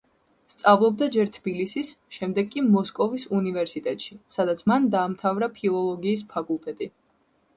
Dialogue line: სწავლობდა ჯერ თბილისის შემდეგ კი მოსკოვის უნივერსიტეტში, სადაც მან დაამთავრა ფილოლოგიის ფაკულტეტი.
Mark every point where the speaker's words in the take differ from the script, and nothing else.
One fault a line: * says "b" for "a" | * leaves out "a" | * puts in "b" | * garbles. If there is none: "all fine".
all fine